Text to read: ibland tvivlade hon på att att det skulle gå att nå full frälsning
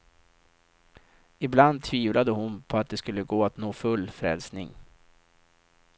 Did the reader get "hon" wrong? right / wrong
right